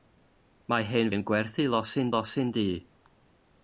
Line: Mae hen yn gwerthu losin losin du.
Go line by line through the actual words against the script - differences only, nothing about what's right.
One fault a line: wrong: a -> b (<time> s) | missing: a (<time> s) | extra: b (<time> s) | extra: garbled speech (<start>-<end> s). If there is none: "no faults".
no faults